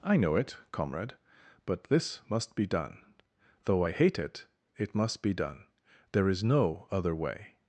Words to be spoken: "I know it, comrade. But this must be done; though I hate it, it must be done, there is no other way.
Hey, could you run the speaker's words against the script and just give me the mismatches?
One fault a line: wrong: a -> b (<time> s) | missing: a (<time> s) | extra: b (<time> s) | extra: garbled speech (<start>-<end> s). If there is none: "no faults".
no faults